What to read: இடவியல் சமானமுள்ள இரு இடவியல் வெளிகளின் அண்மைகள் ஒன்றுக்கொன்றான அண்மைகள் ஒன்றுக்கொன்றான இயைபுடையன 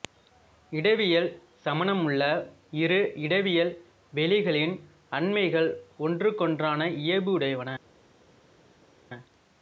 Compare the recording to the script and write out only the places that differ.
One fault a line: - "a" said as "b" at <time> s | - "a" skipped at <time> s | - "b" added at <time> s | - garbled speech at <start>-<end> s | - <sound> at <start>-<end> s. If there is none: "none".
- "அண்மைகள் ஒன்றுக்கொன்றான" skipped at 6.9 s